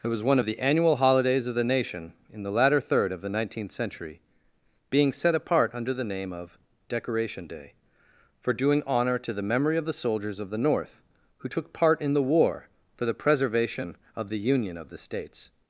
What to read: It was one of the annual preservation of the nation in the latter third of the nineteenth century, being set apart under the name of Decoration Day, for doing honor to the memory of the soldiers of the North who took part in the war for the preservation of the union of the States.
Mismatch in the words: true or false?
true